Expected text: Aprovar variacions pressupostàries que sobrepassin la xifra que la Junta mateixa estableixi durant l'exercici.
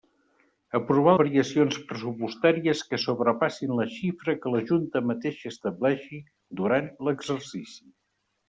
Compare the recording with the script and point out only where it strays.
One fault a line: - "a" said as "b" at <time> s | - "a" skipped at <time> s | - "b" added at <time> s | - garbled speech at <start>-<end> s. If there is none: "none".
none